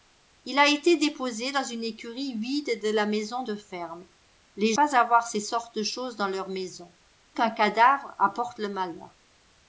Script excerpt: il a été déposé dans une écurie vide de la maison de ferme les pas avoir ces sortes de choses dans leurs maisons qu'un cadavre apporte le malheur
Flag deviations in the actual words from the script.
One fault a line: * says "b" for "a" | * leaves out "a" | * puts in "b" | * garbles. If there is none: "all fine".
all fine